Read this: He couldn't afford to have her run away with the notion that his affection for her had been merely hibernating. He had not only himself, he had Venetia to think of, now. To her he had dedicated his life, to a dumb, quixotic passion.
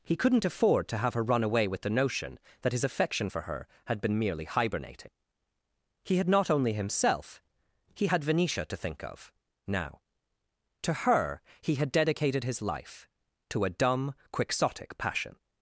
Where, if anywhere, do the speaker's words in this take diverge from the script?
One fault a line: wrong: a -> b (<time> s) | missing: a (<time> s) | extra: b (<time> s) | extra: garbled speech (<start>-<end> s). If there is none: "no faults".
no faults